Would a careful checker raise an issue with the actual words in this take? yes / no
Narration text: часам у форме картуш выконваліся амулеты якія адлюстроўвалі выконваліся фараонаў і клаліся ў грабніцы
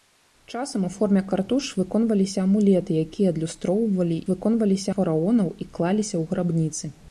no